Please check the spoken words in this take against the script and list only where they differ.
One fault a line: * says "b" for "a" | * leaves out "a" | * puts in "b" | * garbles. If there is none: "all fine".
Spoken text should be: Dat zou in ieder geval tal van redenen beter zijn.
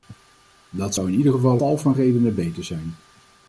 all fine